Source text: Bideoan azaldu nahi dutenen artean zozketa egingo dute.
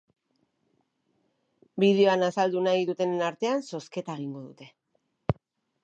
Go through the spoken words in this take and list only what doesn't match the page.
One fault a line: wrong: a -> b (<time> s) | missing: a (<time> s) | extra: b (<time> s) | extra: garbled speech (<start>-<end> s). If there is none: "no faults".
no faults